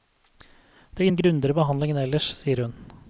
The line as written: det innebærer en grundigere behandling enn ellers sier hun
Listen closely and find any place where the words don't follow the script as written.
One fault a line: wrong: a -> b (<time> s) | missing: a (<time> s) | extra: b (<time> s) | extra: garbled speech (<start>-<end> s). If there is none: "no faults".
missing: innebærer (1.1 s)